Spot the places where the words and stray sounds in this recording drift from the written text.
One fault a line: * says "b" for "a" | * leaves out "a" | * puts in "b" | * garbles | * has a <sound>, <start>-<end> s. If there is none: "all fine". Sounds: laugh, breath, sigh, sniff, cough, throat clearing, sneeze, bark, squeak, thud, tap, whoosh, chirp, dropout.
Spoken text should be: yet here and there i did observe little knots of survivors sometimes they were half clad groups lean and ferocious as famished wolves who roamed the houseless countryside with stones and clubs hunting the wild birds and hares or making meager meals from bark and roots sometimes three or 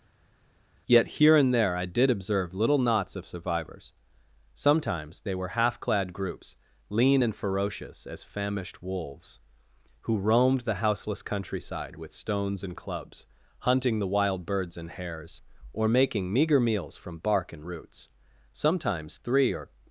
all fine